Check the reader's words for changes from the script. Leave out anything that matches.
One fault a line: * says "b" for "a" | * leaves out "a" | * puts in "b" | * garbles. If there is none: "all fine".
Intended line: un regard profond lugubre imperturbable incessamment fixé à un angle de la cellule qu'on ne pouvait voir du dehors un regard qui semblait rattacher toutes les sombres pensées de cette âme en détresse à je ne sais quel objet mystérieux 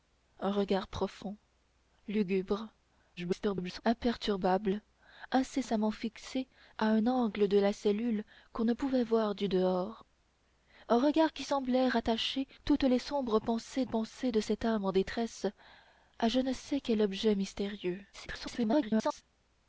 * garbles
* puts in "pensées"
* garbles